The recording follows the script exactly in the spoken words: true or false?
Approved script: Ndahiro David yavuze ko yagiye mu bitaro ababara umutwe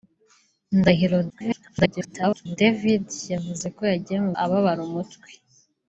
false